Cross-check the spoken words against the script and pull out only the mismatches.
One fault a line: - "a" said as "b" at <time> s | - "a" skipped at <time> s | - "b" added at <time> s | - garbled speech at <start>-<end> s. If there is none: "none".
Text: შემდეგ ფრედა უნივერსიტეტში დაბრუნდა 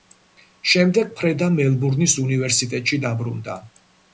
- "მელბურნის" added at 1.6 s